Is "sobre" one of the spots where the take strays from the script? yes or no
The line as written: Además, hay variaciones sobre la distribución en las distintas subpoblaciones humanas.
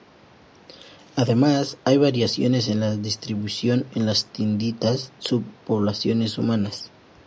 yes